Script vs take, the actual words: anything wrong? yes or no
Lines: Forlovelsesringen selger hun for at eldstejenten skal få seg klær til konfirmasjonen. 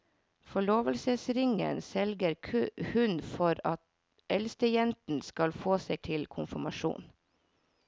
yes